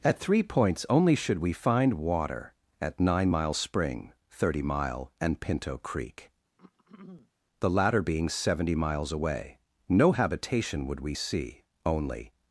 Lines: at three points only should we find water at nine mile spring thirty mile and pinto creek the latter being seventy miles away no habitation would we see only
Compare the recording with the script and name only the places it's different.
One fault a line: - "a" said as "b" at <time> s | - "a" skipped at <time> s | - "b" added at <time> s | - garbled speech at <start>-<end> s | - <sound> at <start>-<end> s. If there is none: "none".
- throat clearing at 6.6-7.3 s